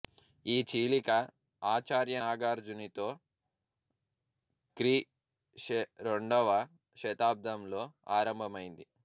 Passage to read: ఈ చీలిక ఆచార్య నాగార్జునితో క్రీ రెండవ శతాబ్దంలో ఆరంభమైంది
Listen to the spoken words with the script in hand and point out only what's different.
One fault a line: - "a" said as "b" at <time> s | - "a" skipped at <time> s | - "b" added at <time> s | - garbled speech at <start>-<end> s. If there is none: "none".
- "శ" added at 5.5 s